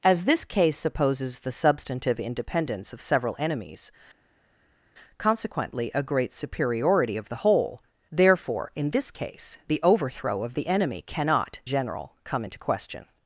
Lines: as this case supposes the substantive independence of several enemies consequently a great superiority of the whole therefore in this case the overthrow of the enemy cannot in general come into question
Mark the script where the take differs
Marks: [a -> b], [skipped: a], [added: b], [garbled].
as this case supposes the substantive independence of several enemies consequently a great superiority of the whole therefore in this case the overthrow of the enemy cannot [skipped: in] general come into question